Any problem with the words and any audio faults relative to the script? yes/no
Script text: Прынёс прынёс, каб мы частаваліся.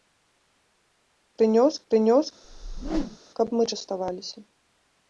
yes